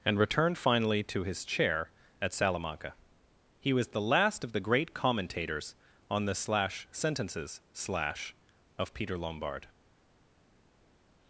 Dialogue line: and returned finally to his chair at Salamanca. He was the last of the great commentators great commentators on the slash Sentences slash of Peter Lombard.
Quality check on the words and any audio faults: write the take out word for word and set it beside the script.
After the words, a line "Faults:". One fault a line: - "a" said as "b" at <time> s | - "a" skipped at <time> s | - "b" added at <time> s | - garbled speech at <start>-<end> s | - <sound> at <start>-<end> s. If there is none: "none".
and returned finally to his chair at Salamanca. He was the last of the great commentators on the slash Sentences slash of Peter Lombard.
Faults:
- "great commentators" skipped at 5.8 s